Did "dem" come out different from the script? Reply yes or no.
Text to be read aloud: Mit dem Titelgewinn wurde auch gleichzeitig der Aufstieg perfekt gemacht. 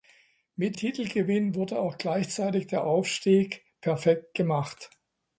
yes